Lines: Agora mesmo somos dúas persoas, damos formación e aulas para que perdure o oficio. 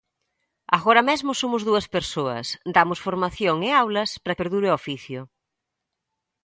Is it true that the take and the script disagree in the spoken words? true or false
true